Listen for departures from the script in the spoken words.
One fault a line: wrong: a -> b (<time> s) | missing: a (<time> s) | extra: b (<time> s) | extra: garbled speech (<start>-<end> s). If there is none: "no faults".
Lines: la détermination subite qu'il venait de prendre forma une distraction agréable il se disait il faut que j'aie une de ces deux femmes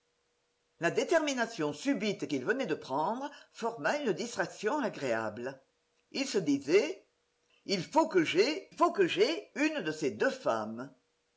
extra: faut que j'aie (8.7 s)